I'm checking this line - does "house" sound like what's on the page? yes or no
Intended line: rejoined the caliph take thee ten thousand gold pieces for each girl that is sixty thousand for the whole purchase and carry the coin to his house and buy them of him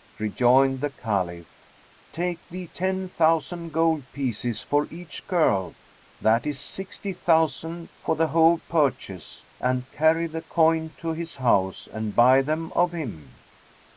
yes